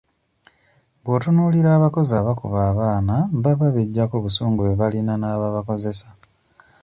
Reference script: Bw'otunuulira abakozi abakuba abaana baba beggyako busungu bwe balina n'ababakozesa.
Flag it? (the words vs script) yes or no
no